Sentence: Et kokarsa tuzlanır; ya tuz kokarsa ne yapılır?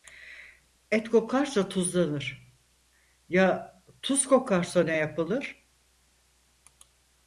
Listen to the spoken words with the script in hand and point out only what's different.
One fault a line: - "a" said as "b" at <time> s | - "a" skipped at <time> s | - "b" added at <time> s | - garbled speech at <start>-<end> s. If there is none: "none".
none